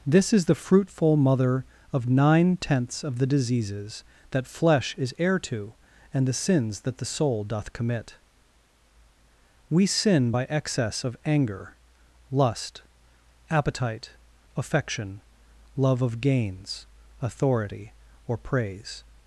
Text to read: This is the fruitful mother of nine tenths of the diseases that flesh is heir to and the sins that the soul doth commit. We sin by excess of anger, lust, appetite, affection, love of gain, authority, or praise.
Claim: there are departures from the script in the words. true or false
true